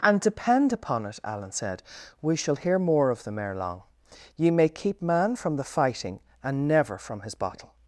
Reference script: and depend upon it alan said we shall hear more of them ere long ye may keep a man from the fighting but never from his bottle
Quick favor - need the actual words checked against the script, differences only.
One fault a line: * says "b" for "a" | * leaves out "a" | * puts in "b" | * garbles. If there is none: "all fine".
* leaves out "a"
* says "and" for "but"